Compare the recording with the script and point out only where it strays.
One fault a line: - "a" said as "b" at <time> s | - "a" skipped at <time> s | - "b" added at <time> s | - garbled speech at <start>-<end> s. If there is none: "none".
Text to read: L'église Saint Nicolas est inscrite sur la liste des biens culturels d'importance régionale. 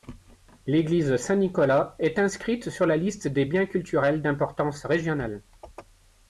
none